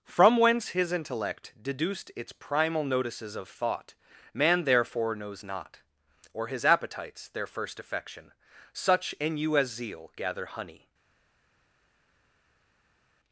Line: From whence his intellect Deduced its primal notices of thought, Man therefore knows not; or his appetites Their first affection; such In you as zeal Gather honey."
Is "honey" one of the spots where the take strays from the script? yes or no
no